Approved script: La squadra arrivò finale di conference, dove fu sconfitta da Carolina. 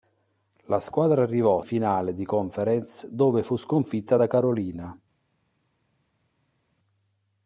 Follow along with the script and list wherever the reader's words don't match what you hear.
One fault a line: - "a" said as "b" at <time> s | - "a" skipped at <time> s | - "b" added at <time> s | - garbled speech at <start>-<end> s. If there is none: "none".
none